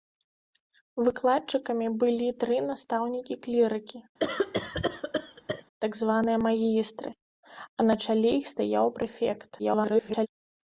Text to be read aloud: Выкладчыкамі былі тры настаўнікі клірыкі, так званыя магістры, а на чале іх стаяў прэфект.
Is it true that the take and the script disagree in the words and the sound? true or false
true